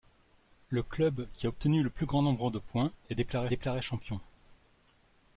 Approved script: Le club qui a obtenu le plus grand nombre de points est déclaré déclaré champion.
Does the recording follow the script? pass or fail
pass